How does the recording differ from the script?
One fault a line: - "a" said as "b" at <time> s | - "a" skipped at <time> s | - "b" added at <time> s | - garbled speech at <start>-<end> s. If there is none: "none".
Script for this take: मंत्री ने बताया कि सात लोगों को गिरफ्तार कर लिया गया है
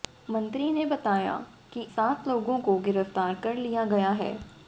none